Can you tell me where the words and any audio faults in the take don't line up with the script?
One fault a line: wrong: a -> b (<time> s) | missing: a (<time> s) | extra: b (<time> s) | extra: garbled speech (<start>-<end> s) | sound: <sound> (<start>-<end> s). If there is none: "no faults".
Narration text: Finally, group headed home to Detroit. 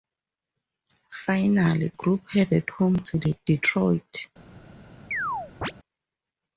sound: chirp (5.1-5.7 s)